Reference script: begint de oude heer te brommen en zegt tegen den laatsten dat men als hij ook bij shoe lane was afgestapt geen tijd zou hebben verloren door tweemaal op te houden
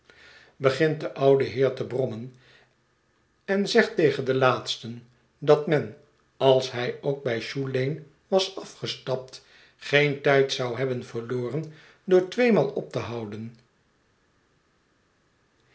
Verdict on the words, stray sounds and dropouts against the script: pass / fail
pass